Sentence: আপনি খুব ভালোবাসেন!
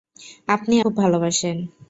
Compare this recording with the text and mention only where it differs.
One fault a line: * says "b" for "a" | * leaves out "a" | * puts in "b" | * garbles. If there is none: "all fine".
all fine